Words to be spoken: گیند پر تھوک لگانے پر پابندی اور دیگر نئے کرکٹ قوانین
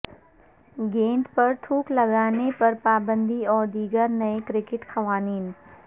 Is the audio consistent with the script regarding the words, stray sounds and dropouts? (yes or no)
yes